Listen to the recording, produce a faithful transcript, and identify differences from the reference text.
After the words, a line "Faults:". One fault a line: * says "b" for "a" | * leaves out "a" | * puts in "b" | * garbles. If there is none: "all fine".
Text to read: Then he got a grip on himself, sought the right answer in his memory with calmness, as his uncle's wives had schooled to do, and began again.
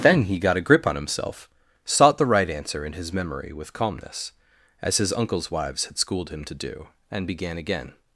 Then he got a grip on himself, sought the right answer in his memory with calmness, as his uncle's wives had schooled him to do, and began again.
Faults:
* puts in "him"